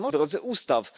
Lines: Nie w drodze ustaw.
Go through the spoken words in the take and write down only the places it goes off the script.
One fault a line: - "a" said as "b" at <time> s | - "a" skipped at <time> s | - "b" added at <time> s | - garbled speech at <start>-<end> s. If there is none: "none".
none